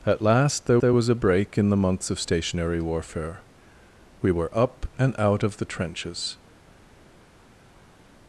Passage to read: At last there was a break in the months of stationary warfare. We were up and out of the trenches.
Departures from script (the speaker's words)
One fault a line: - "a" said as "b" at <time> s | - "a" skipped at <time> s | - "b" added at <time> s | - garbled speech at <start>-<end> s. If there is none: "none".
- "there" added at 0.8 s